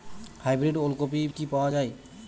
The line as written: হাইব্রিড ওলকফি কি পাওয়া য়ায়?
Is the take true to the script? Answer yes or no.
yes